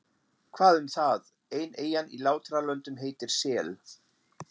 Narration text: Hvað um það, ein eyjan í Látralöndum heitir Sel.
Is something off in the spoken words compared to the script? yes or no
no